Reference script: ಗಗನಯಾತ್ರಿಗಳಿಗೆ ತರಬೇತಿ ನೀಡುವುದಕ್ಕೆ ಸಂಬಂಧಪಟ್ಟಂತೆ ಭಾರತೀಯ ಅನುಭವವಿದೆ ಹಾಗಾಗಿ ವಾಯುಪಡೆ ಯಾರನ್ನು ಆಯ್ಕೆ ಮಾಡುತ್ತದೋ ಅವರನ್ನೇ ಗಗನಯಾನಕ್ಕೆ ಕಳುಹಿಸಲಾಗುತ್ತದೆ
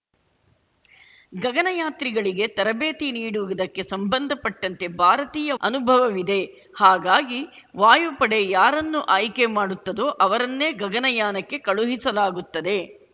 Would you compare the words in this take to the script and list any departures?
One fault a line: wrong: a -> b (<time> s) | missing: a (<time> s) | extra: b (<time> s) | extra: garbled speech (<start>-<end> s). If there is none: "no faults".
no faults